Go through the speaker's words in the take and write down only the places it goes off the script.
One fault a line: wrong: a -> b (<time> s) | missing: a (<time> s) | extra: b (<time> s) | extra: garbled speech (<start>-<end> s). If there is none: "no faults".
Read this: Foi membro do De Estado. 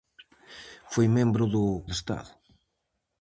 no faults